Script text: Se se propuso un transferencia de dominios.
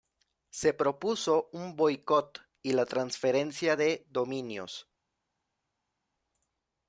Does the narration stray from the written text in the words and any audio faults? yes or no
yes